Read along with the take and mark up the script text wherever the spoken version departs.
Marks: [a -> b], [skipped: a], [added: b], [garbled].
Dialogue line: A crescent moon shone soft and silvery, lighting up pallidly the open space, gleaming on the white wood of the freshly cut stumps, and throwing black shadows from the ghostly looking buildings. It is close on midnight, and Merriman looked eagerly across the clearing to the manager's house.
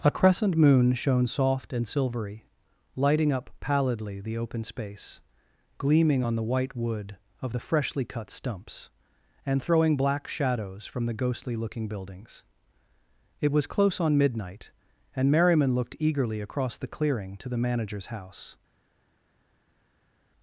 A crescent moon shone soft and silvery, lighting up pallidly the open space, gleaming on the white wood of the freshly cut stumps, and throwing black shadows from the ghostly looking buildings. It [is -> was] close on midnight, and Merriman looked eagerly across the clearing to the manager's house.